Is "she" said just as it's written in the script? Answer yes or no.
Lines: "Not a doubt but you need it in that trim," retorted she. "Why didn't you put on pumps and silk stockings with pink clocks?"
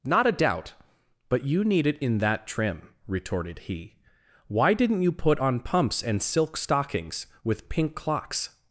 no